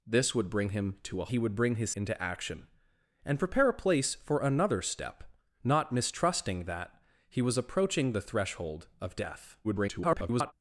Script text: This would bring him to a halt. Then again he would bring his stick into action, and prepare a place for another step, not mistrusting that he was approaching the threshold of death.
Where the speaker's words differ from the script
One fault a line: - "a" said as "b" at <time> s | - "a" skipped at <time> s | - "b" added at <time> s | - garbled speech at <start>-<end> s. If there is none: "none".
- "halt Then again" skipped at 1.3 s
- "stick" skipped at 1.9 s
- garbled speech at 9.6-10.5 s